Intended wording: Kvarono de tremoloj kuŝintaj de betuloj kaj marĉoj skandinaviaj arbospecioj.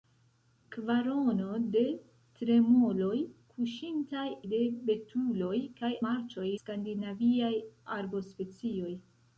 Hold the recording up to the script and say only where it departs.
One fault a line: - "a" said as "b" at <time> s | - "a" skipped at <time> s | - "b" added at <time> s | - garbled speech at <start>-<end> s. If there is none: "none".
none